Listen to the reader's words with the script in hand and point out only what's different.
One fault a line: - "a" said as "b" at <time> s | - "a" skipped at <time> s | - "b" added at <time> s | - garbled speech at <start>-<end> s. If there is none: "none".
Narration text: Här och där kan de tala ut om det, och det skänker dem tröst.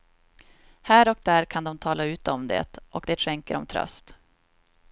none